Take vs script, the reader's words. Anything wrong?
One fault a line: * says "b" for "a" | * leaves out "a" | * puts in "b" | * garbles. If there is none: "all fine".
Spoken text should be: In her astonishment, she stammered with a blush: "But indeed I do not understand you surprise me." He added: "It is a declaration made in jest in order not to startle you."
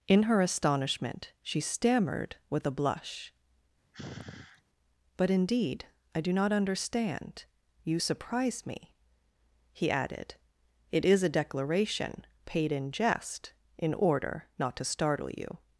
* says "paid" for "made"